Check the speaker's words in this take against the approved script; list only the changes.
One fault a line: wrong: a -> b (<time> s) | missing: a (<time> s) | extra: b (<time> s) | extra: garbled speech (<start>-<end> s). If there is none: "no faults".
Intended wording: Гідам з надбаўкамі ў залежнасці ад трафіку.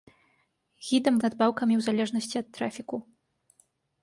no faults